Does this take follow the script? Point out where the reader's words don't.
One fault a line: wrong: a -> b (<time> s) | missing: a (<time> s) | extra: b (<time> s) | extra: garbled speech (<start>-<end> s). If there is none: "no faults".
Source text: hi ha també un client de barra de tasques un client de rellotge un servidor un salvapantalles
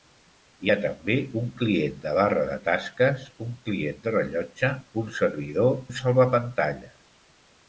no faults